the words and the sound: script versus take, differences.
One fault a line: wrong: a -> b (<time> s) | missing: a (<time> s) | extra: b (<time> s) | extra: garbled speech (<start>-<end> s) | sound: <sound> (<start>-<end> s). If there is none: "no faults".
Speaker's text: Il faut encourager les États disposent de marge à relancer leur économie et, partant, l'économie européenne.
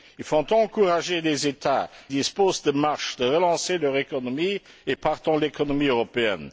no faults